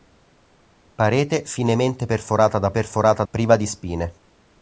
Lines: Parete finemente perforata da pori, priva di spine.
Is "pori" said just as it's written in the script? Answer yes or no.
no